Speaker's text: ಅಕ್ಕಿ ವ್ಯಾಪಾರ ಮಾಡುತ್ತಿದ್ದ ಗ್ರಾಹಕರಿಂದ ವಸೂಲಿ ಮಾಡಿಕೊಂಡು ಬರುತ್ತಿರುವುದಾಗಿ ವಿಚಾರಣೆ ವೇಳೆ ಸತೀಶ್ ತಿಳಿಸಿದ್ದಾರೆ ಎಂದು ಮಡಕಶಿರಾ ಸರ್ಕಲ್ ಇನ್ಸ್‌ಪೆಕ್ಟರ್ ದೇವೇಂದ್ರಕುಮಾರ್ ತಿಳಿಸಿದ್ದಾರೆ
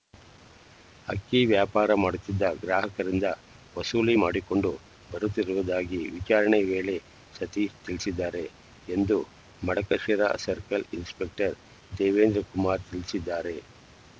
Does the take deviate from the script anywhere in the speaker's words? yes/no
no